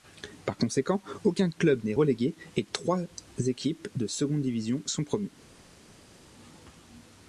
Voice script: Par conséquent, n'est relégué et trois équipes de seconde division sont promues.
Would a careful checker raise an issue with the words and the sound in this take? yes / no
yes